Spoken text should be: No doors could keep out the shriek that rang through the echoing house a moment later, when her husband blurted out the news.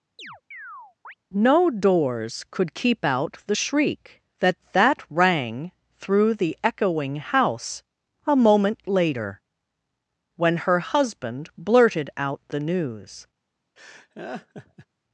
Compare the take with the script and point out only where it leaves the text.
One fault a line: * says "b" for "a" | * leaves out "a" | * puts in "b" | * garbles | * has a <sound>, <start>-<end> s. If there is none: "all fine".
* has a chirp, 0.2-1.1 s
* puts in "that"
* has a laugh, 13.8-14.9 s